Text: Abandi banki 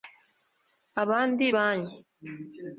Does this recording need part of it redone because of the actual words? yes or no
no